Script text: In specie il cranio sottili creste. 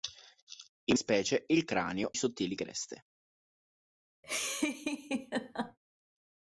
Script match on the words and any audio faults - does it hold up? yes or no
no